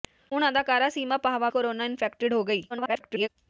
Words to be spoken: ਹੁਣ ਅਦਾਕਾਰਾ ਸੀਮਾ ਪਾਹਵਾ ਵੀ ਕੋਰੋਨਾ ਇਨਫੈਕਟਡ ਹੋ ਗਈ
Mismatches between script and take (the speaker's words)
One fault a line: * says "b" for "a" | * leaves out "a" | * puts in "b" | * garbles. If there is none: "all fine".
* leaves out "ਵੀ"
* garbles